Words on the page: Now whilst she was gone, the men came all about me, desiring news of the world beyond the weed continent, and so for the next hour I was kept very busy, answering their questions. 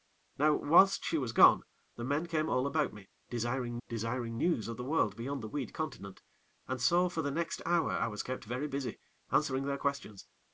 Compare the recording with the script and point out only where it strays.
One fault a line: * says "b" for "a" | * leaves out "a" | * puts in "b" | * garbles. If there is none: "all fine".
* puts in "desiring"